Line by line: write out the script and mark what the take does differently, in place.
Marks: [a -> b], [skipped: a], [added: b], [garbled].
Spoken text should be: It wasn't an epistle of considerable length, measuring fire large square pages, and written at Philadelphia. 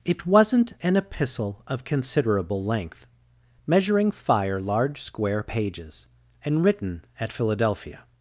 It wasn't an epistle of considerable length, measuring fire large square pages, and written at Philadelphia.